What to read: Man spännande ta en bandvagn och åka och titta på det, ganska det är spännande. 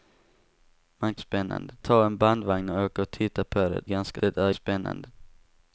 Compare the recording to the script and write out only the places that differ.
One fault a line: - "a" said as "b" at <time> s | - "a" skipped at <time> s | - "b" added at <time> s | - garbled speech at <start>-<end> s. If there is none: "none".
none